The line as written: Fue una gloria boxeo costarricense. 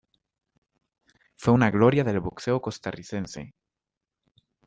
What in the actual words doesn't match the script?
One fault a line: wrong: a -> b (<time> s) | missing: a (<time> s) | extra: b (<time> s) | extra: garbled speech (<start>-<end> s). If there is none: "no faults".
extra: del (2.0 s)